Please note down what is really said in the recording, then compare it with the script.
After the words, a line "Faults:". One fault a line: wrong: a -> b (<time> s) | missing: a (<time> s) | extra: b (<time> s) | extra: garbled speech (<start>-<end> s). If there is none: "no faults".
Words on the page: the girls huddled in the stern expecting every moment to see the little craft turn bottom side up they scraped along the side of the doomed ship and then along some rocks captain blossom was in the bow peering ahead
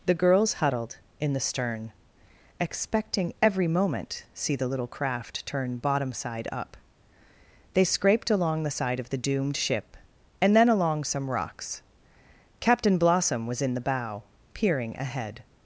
the girls huddled in the stern expecting every moment see the little craft turn bottom side up they scraped along the side of the doomed ship and then along some rocks captain blossom was in the bow peering ahead
Faults:
missing: to (4.2 s)